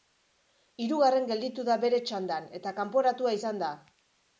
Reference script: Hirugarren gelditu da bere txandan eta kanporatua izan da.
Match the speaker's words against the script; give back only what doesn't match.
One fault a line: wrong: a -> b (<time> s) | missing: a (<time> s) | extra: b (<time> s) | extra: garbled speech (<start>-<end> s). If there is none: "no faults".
no faults